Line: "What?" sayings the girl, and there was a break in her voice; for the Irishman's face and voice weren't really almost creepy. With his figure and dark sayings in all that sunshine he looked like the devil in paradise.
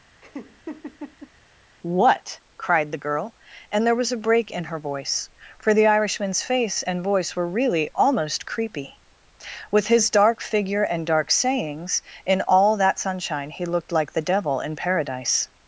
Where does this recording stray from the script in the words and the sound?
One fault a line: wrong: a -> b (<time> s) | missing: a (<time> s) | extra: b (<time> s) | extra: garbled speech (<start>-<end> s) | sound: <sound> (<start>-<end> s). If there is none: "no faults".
sound: laugh (0.2-1.3 s)
wrong: sayings -> cried (2.6 s)
wrong: weren't -> were (7.4 s)
extra: dark (10.1 s)